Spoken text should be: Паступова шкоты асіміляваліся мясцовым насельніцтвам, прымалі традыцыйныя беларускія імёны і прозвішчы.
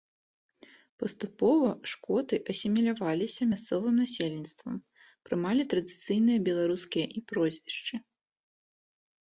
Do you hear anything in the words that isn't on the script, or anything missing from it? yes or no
yes